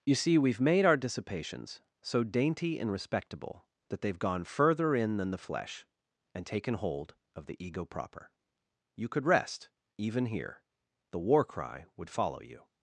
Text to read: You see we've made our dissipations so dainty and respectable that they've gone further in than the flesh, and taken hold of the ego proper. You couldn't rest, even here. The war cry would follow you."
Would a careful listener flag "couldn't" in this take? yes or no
yes